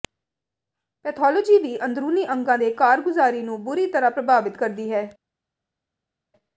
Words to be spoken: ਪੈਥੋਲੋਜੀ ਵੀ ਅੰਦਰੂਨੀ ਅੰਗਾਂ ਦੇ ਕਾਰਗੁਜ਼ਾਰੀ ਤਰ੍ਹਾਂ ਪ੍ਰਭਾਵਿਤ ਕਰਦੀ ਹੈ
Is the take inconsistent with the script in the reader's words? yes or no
yes